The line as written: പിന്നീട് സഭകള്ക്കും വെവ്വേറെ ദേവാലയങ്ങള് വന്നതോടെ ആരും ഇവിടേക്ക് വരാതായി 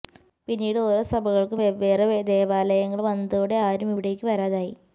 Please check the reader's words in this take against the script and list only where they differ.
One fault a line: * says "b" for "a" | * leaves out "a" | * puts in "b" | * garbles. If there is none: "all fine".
* puts in "ഓരോ"